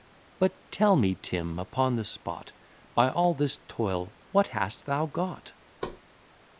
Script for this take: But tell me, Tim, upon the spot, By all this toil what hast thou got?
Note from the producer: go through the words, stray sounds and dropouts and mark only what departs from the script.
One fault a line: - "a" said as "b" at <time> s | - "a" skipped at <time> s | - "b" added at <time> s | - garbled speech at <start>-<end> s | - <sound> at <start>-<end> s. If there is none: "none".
- thud at 5.8-6.0 s